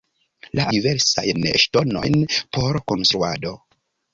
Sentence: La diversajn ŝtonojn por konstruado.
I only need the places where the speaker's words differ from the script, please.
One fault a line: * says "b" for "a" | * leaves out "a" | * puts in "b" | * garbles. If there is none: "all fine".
all fine